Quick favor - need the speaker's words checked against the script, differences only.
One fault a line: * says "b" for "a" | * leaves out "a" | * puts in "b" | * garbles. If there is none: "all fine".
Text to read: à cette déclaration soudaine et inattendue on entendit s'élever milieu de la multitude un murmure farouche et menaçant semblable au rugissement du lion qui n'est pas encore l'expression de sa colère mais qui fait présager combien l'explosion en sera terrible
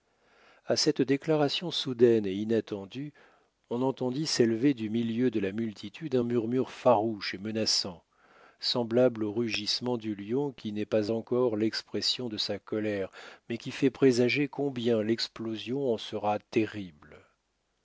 * puts in "du"